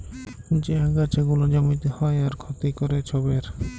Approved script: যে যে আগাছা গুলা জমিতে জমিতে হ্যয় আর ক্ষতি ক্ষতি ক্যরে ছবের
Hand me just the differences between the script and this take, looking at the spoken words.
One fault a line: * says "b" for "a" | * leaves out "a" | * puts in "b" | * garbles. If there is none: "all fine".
* leaves out "যে"
* leaves out "জমিতে"
* leaves out "ক্ষতি"